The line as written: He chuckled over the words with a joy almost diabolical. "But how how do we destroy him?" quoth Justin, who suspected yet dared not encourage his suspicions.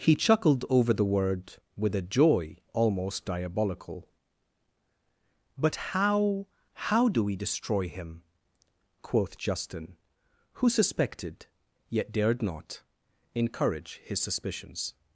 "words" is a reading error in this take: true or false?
true